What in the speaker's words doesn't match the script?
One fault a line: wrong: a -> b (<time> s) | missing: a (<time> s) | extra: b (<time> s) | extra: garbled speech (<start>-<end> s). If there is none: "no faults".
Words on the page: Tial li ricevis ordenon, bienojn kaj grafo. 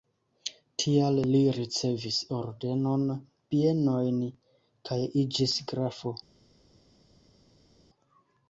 extra: iĝis (5.2 s)